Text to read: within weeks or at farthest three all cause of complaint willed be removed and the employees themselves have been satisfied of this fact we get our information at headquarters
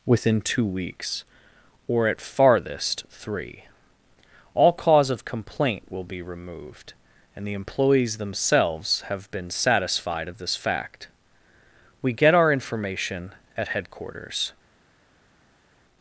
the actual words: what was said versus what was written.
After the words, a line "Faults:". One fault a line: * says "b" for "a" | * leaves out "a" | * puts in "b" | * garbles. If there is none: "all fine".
within two weeks or at farthest three all cause of complaint will be removed and the employees themselves have been satisfied of this fact we get our information at headquarters
Faults:
* puts in "two"
* says "will" for "willed"